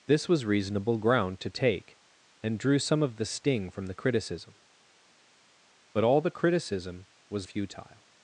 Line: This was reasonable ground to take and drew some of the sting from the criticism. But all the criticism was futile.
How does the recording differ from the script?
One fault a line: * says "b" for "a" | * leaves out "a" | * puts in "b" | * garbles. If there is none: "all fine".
all fine